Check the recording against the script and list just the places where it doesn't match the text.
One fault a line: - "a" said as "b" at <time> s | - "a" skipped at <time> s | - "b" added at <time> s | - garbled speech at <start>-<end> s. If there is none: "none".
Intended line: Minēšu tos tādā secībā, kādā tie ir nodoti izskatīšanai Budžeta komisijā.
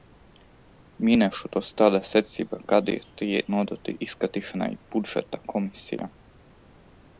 - "ir" skipped at 3.4 s